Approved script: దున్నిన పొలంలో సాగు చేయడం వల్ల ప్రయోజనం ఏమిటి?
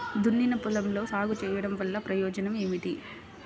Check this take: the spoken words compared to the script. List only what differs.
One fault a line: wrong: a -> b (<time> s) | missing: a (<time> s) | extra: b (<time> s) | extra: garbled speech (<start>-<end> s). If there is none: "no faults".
no faults